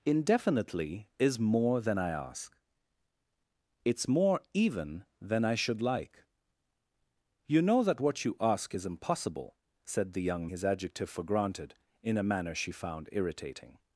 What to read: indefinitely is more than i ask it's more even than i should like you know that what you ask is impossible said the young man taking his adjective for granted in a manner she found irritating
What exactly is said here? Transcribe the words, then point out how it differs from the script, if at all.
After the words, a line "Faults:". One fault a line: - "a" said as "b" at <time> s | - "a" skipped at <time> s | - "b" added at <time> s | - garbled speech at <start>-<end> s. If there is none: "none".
indefinitely is more than i ask it's more even than i should like you know that what you ask is impossible said the young his adjective for granted in a manner she found irritating
Faults:
- "man taking" skipped at 10.5 s